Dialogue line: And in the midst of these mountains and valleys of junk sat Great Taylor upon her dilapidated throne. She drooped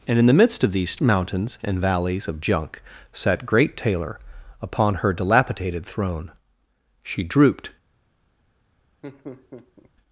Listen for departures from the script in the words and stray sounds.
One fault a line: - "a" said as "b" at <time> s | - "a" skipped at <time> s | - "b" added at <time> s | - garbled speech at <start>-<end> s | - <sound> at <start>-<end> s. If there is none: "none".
- laugh at 9.0-9.9 s